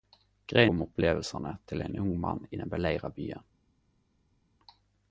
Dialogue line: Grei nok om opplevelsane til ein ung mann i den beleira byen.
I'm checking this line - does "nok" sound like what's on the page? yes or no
no